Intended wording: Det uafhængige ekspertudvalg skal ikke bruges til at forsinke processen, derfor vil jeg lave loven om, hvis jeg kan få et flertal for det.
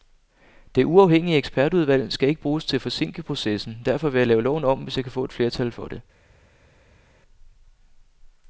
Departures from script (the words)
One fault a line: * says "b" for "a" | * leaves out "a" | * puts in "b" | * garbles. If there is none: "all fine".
all fine